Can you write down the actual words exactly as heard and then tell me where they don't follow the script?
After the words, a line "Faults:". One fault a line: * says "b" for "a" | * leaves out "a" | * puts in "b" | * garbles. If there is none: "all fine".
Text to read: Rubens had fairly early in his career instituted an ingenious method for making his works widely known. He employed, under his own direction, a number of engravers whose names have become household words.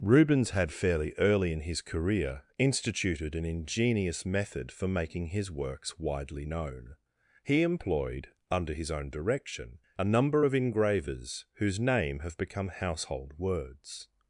Rubens had fairly early in his career instituted an ingenious method for making his works widely known. He employed, under his own direction, a number of engravers whose name have become household words.
Faults:
* says "name" for "names"